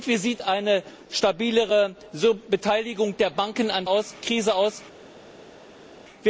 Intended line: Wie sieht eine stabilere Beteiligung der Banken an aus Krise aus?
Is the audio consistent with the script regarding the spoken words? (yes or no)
yes